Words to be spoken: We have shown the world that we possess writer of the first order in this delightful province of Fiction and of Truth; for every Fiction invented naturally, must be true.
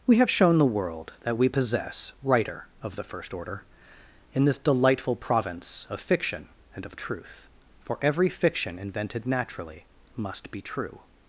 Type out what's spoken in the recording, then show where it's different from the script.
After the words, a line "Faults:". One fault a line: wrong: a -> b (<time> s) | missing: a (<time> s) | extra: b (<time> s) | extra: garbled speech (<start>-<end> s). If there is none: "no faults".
We have shown the world that we possess writer of the first order in this delightful province of Fiction and of Truth; for every Fiction invented naturally, must be true.
Faults:
no faults